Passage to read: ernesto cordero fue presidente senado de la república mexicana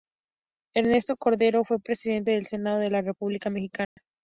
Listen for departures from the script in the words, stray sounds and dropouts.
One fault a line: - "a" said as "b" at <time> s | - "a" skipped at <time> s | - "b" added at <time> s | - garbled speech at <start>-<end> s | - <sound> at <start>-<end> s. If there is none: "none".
- "del" added at 2.3 s
- dropout at 3.8-4.0 s